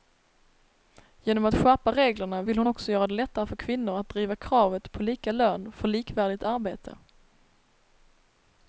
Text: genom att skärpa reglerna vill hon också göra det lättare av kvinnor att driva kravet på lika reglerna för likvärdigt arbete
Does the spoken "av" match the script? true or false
false